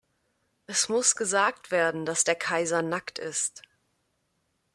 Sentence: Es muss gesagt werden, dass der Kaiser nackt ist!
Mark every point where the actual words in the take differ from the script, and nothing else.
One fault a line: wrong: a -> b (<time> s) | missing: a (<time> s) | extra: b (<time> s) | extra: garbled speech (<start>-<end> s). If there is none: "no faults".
no faults